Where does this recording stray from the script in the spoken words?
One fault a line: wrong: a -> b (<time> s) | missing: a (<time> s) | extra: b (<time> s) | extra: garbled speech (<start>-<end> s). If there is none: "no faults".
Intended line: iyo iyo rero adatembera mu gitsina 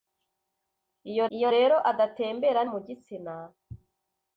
no faults